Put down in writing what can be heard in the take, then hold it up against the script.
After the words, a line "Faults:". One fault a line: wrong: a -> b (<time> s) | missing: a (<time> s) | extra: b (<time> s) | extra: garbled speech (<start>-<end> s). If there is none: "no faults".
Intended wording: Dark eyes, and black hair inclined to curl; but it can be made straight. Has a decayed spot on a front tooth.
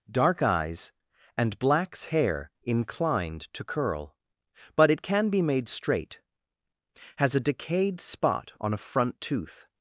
Dark eyes, and blacks hair inclined to curl; but it can be made straight. Has a decayed spot on a front tooth.
Faults:
wrong: black -> blacks (1.6 s)